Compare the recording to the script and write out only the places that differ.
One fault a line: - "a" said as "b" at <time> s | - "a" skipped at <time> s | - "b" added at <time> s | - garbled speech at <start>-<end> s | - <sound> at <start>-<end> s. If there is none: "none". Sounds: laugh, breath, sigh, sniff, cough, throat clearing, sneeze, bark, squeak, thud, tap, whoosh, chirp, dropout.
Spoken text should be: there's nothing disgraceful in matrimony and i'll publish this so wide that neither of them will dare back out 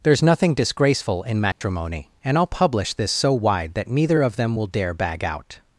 - dropout at 1.5-1.6 s
- "back" said as "bag" at 4.9 s